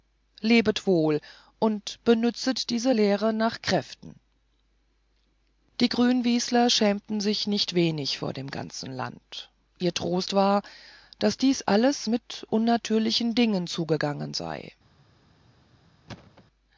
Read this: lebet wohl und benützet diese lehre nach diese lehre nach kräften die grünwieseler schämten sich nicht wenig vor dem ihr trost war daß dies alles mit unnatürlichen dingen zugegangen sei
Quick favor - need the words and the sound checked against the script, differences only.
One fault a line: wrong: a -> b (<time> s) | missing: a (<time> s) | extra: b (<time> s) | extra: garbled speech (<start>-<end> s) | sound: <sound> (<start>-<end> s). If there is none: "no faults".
missing: diese lehre nach (3.6 s)
extra: ganzen land (8.5 s)
sound: thud (16.1-16.4 s)